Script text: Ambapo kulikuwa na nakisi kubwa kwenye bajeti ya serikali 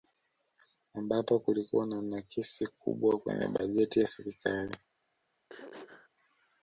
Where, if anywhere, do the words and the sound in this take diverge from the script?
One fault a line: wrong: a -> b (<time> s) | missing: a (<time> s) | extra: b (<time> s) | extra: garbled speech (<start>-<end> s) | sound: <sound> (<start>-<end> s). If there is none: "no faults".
sound: throat clearing (5.5-6.1 s)